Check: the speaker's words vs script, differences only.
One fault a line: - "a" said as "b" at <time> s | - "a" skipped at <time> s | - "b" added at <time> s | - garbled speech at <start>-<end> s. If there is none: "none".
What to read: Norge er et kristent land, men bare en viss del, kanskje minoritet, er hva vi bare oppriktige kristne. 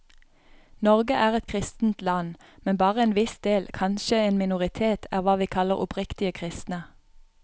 - "en" added at 4.3 s
- "bare" said as "kaller" at 5.5 s